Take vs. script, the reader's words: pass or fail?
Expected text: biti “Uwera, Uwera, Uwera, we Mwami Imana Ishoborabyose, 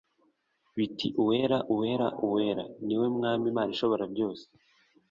fail